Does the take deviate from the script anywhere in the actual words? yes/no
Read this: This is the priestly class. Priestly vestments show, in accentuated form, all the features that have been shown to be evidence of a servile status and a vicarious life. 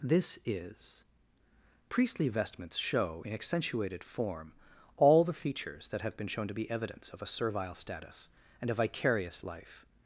yes